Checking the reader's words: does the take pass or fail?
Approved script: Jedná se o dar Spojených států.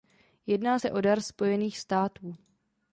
pass